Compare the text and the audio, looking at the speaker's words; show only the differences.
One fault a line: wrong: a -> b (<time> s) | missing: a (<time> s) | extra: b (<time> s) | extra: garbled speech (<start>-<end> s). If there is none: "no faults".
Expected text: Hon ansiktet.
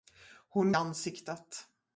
no faults